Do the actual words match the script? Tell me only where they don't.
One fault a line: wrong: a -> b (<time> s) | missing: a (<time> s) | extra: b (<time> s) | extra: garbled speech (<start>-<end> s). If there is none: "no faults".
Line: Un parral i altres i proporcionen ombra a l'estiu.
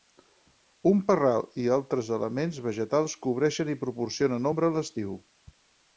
extra: elements vegetals cobreixen (2.2 s)